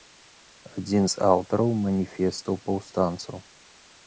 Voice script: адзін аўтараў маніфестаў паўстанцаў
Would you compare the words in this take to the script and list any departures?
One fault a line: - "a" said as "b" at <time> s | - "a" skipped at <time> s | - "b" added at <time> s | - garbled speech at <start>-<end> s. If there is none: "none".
- "з" added at 1.1 s